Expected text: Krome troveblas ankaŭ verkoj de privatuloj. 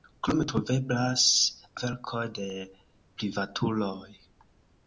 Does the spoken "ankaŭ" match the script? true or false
false